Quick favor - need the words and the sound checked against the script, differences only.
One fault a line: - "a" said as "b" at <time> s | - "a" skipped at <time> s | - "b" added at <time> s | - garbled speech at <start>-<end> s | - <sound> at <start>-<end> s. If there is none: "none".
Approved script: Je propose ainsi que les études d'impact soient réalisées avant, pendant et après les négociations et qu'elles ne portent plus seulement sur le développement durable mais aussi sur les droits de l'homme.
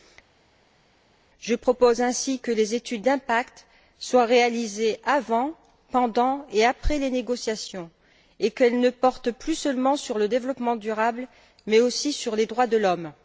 none